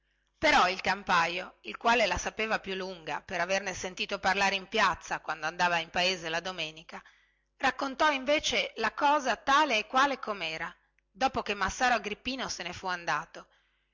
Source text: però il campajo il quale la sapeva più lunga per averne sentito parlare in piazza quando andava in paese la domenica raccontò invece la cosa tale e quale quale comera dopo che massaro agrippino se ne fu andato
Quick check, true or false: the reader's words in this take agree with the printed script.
false